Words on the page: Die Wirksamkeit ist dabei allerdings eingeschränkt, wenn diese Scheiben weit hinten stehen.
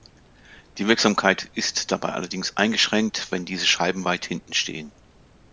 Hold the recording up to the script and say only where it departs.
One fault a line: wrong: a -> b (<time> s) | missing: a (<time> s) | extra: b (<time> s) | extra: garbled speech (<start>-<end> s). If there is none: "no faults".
no faults